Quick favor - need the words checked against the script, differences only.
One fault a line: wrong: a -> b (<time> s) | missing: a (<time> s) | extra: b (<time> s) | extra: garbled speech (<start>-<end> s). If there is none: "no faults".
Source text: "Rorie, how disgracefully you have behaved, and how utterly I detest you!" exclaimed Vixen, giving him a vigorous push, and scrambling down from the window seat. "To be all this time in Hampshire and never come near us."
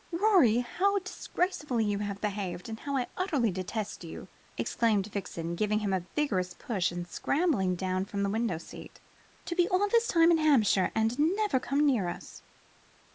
no faults